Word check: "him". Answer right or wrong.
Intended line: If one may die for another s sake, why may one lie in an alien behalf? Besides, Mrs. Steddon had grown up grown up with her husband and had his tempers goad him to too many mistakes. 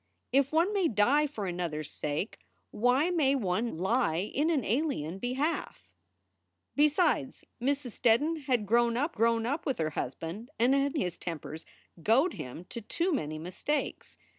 right